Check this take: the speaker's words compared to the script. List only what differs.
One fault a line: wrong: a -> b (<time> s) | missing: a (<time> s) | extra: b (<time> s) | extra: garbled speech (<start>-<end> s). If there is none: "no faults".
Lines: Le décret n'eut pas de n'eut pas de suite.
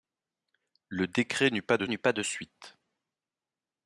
no faults